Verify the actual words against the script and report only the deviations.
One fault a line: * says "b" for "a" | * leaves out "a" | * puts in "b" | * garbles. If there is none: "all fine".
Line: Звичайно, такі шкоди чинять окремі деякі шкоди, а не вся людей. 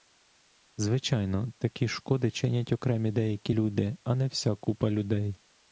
* says "люди" for "шкоди"
* puts in "купа"